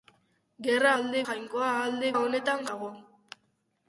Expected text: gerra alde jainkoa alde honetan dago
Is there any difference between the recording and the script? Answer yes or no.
no